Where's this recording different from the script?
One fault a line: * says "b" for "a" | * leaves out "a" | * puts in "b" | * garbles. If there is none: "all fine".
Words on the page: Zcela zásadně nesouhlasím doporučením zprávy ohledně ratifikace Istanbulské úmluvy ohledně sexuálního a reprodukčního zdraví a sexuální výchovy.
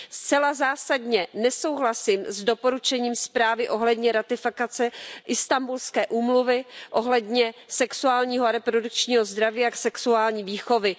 * puts in "s"